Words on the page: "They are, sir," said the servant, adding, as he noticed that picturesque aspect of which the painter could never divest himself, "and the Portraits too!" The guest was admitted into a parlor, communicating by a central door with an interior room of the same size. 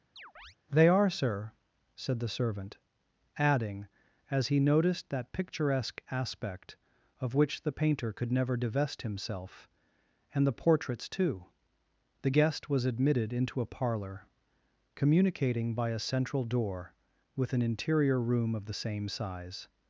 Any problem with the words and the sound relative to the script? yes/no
yes